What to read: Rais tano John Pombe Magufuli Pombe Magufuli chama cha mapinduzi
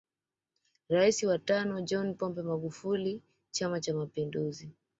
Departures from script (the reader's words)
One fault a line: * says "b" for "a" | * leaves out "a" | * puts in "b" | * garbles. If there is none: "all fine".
* puts in "wa"
* leaves out "Pombe Magufuli"